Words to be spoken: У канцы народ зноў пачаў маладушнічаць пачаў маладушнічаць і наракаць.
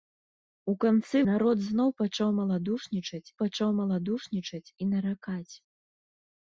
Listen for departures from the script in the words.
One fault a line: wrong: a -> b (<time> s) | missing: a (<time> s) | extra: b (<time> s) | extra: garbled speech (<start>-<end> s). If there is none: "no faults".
no faults